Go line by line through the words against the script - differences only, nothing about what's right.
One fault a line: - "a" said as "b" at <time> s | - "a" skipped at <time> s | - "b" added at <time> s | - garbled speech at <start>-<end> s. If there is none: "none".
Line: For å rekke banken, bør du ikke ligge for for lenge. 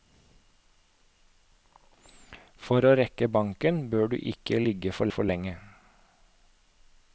none